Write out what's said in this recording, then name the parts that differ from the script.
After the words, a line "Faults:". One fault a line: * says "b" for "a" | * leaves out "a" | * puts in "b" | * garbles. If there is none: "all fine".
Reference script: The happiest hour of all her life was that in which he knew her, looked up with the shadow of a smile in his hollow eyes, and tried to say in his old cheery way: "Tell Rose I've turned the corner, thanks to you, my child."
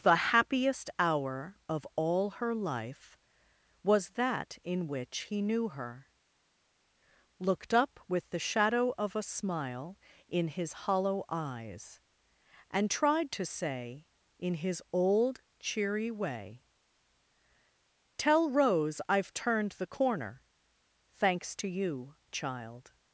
The happiest hour of all her life was that in which he knew her, looked up with the shadow of a smile in his hollow eyes, and tried to say in his old cheery way: "Tell Rose I've turned the corner, thanks to you, child."
Faults:
* leaves out "my"